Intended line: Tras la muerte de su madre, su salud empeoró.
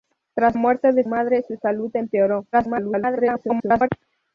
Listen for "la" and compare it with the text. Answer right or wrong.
wrong